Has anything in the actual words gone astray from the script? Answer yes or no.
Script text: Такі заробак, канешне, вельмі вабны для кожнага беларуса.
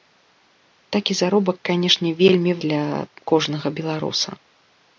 yes